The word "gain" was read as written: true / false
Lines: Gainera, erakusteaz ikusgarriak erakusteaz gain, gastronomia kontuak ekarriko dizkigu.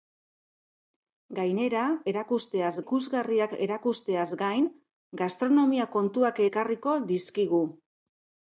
true